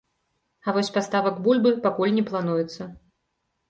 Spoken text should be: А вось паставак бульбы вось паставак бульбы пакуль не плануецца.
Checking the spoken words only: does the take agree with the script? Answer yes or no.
no